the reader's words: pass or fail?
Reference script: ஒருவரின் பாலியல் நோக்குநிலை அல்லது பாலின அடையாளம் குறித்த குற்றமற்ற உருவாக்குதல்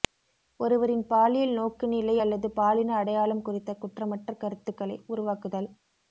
fail